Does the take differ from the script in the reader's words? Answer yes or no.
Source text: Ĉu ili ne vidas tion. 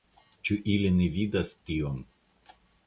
no